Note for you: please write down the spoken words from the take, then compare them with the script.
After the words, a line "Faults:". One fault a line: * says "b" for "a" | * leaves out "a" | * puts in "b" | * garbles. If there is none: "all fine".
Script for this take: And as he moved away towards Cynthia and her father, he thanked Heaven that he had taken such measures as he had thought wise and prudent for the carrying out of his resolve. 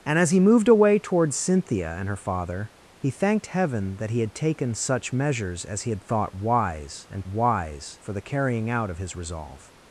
And as he moved away towards Cynthia and her father, he thanked Heaven that he had taken such measures as he had thought wise and wise for the carrying out of his resolve.
Faults:
* says "wise" for "prudent"